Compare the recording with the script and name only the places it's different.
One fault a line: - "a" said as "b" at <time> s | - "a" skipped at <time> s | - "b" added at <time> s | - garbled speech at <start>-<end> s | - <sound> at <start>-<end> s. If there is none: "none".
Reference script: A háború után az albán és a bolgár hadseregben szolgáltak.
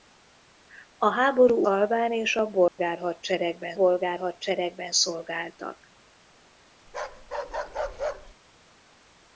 - "után az" skipped at 1.7 s
- dropout at 2.7-2.8 s
- "bolgár hadseregben" added at 3.7 s
- bark at 6.9-8.3 s